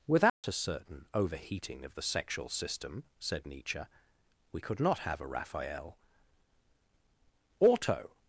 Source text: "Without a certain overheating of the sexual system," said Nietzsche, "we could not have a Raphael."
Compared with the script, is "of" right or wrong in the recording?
right